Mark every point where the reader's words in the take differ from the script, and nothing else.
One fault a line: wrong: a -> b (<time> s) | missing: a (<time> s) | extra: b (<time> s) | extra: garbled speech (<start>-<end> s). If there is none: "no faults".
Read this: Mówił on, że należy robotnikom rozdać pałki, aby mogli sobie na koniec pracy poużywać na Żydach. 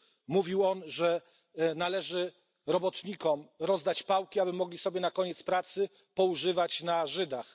no faults